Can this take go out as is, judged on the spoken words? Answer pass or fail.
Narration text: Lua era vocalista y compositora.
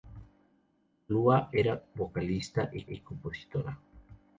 fail